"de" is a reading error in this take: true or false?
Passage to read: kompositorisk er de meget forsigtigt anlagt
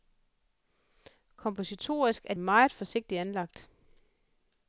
true